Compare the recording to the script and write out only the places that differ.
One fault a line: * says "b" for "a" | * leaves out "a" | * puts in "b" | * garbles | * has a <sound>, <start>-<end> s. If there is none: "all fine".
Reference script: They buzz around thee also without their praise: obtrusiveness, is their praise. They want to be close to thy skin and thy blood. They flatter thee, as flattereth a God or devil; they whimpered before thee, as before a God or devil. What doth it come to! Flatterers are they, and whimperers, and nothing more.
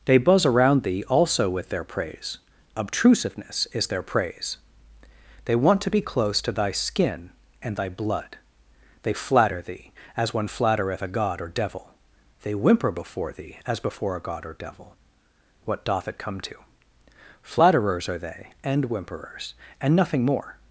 * says "with" for "without"
* puts in "one"
* says "whimper" for "whimpered"